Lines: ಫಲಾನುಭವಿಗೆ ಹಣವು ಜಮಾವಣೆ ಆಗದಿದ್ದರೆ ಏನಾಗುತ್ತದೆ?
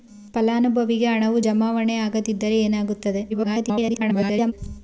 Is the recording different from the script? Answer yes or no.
yes